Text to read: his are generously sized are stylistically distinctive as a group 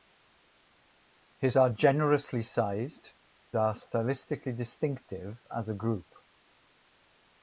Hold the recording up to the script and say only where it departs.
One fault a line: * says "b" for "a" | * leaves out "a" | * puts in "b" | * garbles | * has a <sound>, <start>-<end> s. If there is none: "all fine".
all fine